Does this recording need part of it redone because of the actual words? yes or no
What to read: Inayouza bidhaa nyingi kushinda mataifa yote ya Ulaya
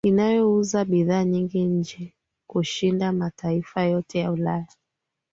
yes